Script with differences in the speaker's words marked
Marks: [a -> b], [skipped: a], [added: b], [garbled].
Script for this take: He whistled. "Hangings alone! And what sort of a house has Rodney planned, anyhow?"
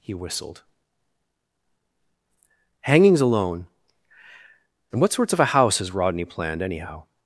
He whistled. "Hangings alone! And what [sort -> sorts] of a house has Rodney planned, anyhow?"